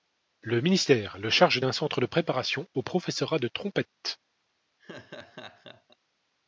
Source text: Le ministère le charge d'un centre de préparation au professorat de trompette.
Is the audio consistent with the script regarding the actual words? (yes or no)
yes